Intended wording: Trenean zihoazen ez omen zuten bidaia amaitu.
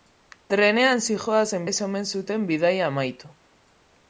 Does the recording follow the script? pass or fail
pass